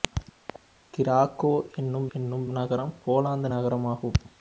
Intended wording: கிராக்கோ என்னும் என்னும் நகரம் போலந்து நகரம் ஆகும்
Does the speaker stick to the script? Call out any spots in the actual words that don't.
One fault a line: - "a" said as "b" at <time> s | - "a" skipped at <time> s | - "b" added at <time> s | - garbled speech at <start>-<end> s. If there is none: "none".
none